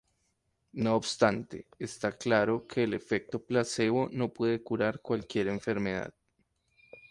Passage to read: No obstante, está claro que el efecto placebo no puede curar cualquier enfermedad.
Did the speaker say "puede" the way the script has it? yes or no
yes